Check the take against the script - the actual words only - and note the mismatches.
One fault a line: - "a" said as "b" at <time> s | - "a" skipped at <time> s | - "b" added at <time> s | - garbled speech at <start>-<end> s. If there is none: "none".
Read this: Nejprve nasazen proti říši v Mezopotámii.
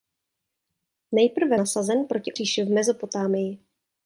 none